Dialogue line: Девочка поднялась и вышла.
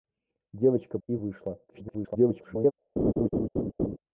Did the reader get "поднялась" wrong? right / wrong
wrong